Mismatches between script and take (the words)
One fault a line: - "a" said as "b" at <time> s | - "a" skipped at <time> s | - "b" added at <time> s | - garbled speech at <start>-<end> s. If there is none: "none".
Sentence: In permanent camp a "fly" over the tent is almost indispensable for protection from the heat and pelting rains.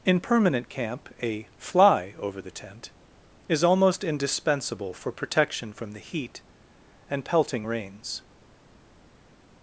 none